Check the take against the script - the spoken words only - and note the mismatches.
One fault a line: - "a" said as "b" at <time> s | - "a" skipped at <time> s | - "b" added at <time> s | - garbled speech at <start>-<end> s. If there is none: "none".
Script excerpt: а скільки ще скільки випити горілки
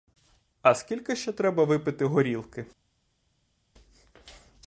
- "скільки" said as "треба" at 1.3 s